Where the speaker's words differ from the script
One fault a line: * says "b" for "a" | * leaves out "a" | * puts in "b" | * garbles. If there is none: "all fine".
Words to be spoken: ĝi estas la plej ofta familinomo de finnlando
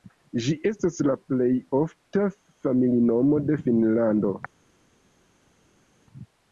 all fine